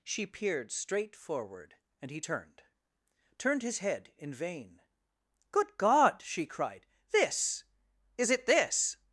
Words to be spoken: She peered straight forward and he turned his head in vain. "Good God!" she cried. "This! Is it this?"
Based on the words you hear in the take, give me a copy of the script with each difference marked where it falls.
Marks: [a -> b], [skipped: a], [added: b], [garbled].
She peered straight forward and he turned [added: turned] his head in vain. "Good God!" she cried. "This! Is it this?"